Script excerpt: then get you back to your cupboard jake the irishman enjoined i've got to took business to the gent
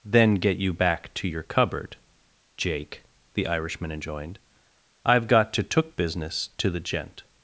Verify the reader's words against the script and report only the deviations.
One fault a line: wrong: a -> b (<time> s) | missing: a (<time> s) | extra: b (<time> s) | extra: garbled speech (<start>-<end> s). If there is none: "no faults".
no faults